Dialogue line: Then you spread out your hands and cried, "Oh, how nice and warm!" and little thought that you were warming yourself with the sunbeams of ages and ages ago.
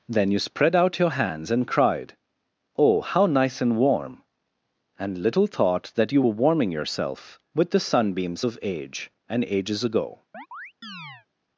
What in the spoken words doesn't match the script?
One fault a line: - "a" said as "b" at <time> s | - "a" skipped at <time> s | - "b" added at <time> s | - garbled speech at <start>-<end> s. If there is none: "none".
- "ages" said as "age" at 8.6 s